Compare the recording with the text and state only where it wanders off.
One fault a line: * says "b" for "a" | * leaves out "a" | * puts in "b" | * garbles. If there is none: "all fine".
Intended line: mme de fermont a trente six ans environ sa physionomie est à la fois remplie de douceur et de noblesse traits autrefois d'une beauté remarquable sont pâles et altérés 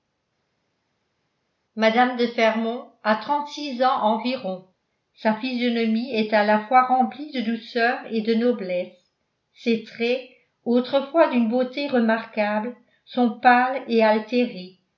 * puts in "ses"